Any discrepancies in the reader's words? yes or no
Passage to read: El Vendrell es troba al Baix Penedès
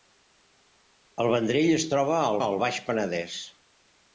yes